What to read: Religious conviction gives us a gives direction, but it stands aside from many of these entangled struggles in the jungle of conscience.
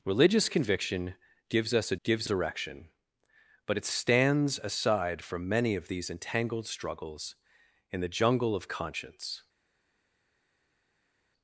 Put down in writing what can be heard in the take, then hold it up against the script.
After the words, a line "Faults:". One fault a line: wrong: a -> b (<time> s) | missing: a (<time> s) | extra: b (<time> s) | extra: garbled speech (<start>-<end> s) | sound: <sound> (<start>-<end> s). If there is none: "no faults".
Religious conviction gives us a gives direction, but it stands aside from many of these entangled struggles in the jungle of conscience.
Faults:
no faults